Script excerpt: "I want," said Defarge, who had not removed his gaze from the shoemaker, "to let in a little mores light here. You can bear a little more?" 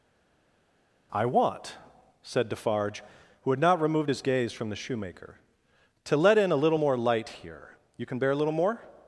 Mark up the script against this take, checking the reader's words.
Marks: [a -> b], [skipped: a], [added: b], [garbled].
"I want," said Defarge, who had not removed his gaze from the shoemaker, "to let in a little [mores -> more] light here. You can bear a little more?"